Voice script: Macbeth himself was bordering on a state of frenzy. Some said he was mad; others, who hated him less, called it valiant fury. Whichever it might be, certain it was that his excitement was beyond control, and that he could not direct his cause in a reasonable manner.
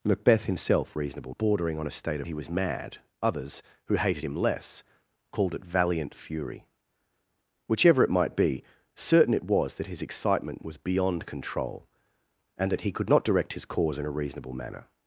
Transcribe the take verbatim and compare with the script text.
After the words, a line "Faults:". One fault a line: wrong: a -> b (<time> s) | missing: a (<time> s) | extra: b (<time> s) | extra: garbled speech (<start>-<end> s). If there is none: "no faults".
Macbeth himself reasonable bordering on a state of he was mad; others, who hated him less, called it valiant fury. Whichever it might be, certain it was that his excitement was beyond control, and that he could not direct his cause in a reasonable manner.
Faults:
wrong: was -> reasonable (1.0 s)
missing: frenzy Some said (2.3 s)